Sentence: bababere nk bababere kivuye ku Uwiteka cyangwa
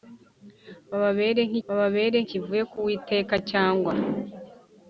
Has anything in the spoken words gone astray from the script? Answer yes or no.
no